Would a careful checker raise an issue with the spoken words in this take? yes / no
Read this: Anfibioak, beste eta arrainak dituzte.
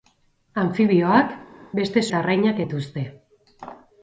no